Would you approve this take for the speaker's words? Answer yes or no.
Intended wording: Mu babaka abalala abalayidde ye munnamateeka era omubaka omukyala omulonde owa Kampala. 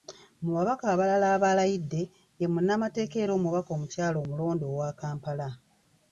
yes